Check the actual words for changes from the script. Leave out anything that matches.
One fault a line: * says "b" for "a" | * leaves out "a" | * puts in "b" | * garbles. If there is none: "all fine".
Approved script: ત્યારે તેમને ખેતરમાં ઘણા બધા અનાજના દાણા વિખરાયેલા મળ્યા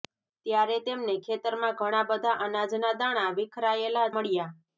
all fine